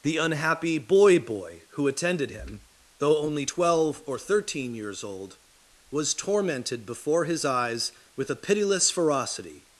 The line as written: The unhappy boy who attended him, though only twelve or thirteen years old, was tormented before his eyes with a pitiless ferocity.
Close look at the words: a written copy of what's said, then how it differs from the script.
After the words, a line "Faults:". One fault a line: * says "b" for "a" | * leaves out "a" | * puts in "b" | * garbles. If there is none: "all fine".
The unhappy boy boy who attended him, though only twelve or thirteen years old, was tormented before his eyes with a pitiless ferocity.
Faults:
* puts in "boy"